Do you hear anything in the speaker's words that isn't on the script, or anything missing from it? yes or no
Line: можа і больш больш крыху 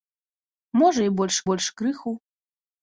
no